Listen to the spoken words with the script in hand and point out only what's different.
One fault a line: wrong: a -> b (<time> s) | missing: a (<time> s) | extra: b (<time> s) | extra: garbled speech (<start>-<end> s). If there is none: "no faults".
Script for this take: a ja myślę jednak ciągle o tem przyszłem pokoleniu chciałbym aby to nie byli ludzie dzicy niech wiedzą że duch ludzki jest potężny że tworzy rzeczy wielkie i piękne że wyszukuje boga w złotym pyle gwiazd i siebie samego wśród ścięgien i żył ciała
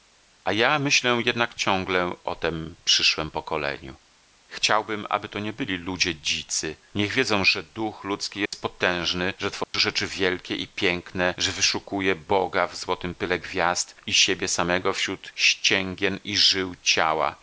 no faults